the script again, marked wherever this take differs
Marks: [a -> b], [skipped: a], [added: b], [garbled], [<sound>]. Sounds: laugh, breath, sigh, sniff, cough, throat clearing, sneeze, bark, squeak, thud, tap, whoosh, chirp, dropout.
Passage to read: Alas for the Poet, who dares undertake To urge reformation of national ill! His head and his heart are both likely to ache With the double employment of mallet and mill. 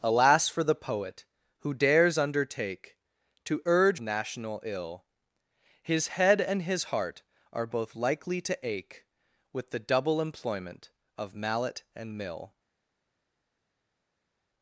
Alas for the Poet, who dares undertake To urge [skipped: reformation of] national ill! His head and his heart are both likely to ache With the double employment of mallet and mill.